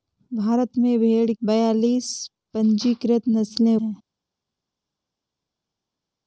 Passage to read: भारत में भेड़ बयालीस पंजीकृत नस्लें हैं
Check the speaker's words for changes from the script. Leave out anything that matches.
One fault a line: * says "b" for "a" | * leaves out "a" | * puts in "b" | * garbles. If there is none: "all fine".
all fine